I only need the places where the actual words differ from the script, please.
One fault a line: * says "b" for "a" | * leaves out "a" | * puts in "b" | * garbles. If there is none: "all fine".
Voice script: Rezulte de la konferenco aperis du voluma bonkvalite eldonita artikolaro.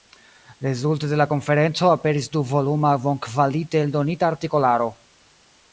all fine